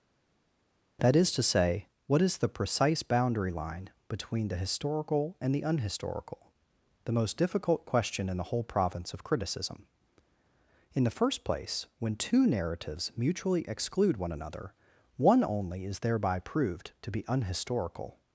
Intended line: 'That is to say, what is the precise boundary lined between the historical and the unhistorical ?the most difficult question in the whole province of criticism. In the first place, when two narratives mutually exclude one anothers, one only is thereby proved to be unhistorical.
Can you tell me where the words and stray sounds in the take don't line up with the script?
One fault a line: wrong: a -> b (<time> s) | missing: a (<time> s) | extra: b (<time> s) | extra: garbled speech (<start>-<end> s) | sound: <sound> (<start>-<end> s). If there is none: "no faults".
wrong: lined -> line (3.5 s)
wrong: anothers -> another (14.3 s)